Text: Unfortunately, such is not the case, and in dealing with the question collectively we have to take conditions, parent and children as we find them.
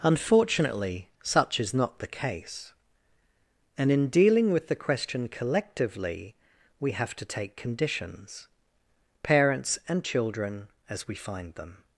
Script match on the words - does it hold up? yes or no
no